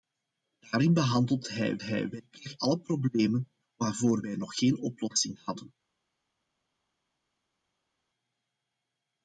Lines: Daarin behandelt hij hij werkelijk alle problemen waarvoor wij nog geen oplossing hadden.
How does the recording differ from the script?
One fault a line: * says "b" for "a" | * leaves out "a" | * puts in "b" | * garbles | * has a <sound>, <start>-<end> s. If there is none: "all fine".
all fine